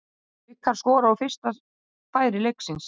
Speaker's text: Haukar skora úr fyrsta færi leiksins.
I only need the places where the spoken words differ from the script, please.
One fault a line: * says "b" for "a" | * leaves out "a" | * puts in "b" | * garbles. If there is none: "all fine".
all fine